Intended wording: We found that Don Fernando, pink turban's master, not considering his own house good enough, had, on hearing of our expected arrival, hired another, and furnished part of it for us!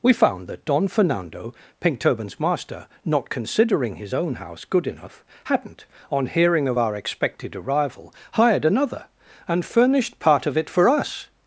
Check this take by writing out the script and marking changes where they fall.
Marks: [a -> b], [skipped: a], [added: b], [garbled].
We found that Don Fernando, pink turban's master, not considering his own house good enough, [had, -> hadn't] on hearing of our expected arrival, hired another, and furnished part of it for us!